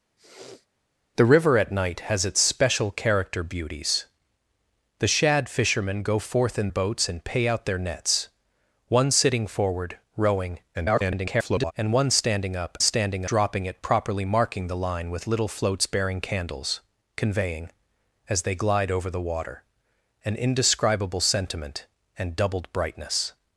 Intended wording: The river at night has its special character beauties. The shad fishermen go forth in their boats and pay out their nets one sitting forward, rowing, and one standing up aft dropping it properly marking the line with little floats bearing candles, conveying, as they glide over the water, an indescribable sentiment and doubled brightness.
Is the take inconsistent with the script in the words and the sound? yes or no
yes